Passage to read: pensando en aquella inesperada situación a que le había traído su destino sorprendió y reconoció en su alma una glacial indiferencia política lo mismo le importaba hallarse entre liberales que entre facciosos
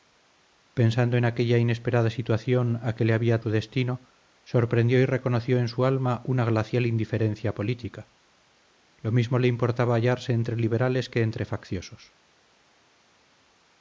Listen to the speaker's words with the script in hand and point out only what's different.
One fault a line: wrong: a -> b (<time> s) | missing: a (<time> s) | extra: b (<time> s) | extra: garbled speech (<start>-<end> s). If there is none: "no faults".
missing: traído (3.4 s)